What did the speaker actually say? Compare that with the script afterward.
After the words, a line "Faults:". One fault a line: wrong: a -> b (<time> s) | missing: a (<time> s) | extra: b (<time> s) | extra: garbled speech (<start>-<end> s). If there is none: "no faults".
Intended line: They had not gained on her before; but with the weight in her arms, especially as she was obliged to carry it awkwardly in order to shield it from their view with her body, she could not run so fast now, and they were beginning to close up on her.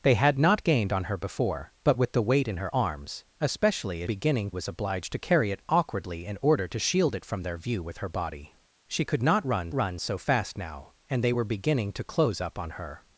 They had not gained on her before; but with the weight in her arms, especially as beginning was obliged to carry it awkwardly in order to shield it from their view with her body, she could not run run so fast now, and they were beginning to close up on her.
Faults:
wrong: she -> beginning (4.0 s)
extra: run (9.7 s)